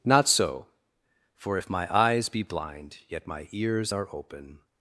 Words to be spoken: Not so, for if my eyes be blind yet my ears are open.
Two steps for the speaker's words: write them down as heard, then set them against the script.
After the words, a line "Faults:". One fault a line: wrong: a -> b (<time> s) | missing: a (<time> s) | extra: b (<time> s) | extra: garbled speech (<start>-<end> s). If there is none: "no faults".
Not so, for if my eyes be blind yet my ears are open.
Faults:
no faults